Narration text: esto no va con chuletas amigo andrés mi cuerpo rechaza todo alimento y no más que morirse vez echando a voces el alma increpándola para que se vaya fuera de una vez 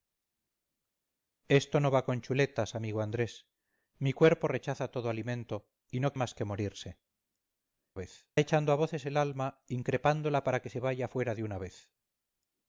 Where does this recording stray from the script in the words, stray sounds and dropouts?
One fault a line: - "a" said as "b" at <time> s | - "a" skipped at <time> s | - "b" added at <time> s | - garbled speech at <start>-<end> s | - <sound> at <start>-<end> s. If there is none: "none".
none